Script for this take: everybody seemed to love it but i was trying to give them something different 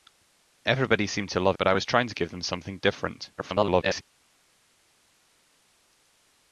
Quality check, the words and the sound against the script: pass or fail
fail